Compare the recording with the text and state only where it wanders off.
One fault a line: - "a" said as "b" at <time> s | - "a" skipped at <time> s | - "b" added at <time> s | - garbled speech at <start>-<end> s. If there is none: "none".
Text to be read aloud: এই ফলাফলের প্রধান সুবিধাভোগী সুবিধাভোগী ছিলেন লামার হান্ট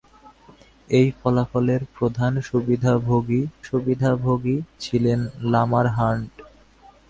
none